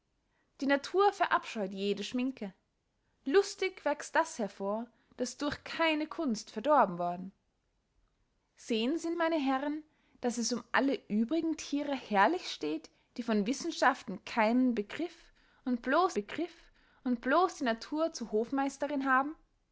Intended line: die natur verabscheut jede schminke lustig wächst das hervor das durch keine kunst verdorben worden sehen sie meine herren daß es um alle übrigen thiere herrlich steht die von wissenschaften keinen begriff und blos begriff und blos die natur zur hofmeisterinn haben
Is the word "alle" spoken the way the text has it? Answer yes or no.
yes